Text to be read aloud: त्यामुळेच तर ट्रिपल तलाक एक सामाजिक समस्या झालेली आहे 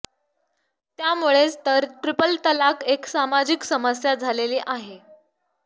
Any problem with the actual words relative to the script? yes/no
no